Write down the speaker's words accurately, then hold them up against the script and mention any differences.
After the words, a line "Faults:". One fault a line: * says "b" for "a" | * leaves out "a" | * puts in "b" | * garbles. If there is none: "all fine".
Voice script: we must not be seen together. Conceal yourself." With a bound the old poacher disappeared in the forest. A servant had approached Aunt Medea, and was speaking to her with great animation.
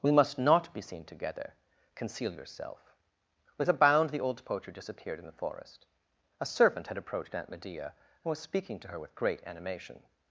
we must not be seen together. Conceal yourself." With a bound the old poacher disappeared in the forest. A servant had approached Aunt Medea, and was speaking to her with great animation.
Faults:
all fine